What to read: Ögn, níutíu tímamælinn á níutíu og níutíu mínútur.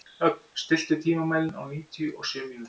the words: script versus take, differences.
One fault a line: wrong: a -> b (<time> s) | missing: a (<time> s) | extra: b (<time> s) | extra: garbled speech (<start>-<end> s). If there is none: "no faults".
wrong: níutíu -> stilltu (0.6 s)
wrong: níutíu -> sjö (2.3 s)